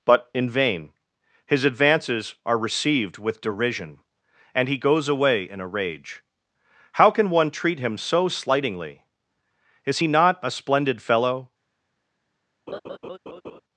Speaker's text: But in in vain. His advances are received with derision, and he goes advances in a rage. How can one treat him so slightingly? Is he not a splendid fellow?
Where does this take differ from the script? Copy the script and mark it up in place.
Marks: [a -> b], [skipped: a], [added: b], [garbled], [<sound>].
But in [skipped: in] vain. His advances are received with derision, and he goes [advances -> away] in a rage. How can one treat him so slightingly? Is he not a splendid fellow? [laugh]